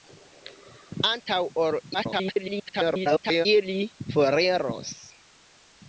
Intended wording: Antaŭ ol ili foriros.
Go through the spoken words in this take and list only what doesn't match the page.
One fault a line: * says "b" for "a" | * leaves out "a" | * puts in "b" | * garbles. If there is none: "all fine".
* garbles